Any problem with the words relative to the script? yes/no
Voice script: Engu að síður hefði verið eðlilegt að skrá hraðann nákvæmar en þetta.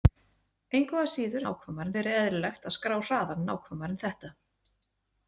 yes